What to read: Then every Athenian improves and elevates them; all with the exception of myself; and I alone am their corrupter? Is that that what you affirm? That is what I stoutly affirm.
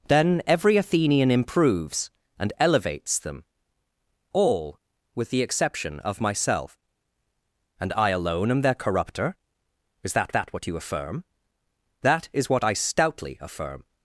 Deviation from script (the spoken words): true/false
false